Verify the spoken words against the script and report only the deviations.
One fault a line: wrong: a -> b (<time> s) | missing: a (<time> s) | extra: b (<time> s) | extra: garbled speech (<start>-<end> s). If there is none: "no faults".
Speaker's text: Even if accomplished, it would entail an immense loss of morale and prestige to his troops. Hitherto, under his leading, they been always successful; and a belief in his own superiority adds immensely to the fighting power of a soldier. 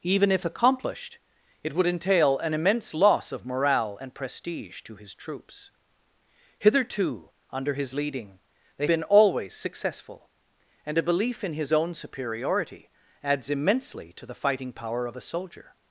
no faults